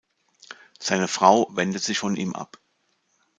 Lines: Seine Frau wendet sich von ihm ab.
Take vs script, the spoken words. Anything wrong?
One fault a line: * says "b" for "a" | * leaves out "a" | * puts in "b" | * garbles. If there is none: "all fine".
all fine